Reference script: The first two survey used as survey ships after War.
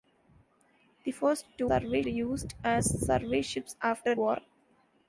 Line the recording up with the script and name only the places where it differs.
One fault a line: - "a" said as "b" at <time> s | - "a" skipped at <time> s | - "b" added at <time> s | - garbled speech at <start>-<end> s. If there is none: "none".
none